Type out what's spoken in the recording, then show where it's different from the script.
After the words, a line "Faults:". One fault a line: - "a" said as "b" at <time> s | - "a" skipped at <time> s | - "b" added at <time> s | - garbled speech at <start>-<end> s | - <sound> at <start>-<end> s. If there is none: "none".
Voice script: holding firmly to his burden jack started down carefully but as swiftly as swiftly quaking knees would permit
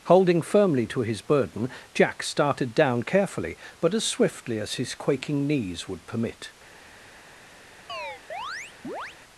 holding firmly to his burden jack started down carefully but as swiftly as his quaking knees would permit
Faults:
- "swiftly" said as "his" at 4.8 s
- chirp at 7.9-9.2 s